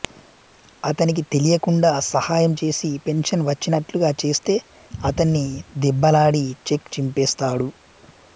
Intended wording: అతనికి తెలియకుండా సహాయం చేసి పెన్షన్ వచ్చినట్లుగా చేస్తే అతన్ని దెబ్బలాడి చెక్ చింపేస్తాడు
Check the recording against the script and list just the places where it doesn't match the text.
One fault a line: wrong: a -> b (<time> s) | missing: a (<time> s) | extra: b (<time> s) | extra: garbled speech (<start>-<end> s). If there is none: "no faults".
no faults